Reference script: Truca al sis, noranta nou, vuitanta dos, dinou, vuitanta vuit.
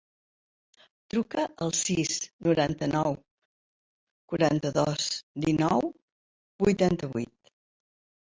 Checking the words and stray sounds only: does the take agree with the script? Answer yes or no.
no